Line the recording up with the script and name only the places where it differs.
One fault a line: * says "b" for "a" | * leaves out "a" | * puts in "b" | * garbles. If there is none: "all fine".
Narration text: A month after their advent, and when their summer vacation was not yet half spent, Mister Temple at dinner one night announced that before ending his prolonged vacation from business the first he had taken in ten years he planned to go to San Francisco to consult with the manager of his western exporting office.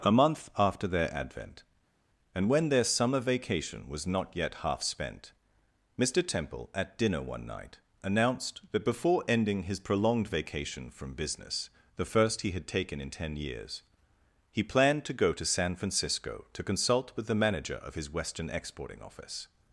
all fine